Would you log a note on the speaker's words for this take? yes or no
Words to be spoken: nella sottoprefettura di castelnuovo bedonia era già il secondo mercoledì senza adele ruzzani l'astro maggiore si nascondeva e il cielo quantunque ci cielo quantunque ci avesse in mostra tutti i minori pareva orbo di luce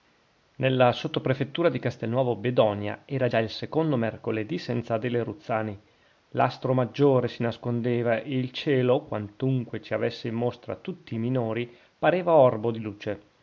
yes